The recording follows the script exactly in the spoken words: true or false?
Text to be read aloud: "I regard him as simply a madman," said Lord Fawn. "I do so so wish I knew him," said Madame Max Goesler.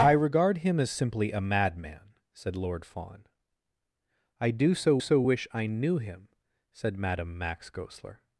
true